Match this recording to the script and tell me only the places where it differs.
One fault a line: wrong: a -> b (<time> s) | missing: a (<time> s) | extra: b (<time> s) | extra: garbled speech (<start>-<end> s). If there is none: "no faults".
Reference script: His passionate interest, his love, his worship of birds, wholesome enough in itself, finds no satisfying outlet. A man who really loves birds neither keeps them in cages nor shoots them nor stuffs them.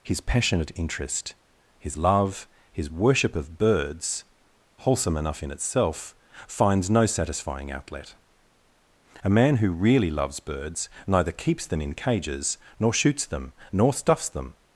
no faults